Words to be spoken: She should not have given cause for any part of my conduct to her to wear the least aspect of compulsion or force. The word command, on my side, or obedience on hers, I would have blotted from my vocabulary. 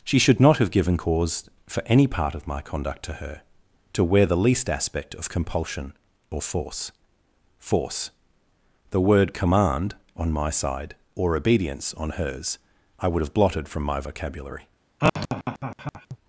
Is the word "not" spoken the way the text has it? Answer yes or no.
yes